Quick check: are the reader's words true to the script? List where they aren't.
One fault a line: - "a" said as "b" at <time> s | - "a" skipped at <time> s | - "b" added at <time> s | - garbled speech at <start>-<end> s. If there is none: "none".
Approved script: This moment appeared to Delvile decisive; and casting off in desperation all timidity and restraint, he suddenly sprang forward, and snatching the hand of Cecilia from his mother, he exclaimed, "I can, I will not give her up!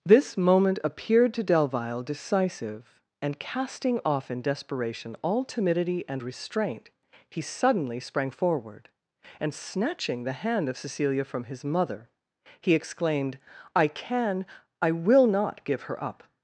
none